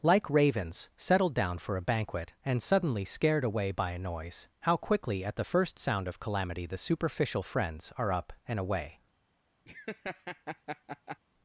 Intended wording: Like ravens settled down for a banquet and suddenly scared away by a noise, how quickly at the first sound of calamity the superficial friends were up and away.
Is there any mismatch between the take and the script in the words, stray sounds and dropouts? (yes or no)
yes